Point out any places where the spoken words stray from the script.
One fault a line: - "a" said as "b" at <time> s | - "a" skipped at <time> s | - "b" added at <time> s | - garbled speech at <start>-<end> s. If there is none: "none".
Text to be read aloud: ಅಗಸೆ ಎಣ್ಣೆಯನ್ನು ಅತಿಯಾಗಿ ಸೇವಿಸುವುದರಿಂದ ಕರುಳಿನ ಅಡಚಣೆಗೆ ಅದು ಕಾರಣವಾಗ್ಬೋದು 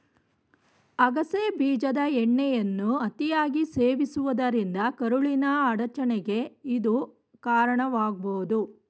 - "ಬೀಜದ" added at 1.6 s
- "ಅದು" said as "ಇದು" at 6.6 s